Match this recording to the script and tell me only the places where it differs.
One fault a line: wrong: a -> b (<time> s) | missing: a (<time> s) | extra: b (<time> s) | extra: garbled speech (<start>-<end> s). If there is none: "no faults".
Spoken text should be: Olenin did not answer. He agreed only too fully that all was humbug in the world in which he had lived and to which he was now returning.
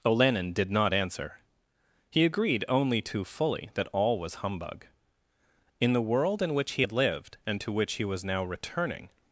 no faults